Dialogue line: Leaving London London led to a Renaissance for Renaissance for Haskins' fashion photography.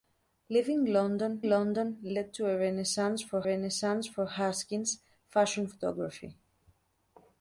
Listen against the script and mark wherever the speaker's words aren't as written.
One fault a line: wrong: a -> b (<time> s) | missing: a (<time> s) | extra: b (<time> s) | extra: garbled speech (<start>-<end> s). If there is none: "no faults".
no faults